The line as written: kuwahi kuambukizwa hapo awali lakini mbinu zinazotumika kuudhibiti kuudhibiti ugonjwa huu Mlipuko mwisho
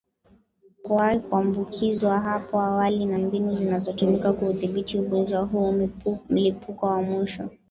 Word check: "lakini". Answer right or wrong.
wrong